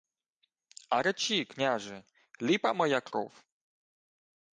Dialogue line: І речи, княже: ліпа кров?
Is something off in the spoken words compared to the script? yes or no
yes